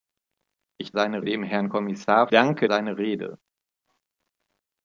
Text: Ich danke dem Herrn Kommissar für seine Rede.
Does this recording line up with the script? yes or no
no